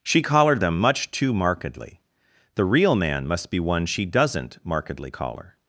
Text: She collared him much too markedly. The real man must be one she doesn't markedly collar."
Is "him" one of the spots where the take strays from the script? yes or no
yes